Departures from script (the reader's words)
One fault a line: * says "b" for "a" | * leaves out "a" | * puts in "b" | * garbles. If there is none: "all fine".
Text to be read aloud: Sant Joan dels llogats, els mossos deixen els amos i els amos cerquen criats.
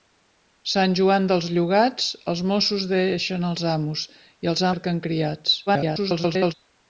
* leaves out "amos"
* garbles